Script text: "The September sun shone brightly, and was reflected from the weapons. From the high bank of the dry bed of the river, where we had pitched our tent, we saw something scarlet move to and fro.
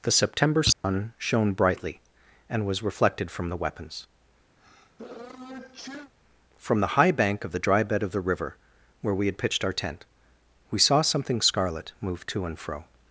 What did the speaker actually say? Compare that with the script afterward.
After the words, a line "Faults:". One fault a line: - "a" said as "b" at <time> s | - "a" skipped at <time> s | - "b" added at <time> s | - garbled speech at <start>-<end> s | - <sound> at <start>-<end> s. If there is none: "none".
"The September sun shone brightly, and was reflected from the weapons. From the high bank of the dry bed of the river, where we had pitched our tent, we saw something scarlet move to and fro.
Faults:
- dropout at 0.7-0.8 s
- sneeze at 4.6-6.1 s